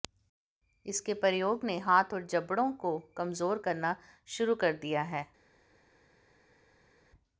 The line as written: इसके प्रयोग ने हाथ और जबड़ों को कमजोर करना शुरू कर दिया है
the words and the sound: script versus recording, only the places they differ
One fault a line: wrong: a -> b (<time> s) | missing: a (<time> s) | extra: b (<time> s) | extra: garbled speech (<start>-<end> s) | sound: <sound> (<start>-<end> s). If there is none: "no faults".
no faults